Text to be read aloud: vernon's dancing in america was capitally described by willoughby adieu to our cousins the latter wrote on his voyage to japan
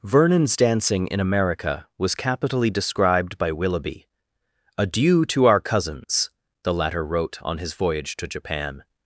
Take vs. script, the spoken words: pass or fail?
pass